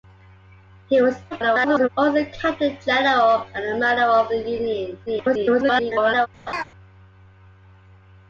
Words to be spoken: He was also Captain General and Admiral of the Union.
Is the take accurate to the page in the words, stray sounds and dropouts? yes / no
no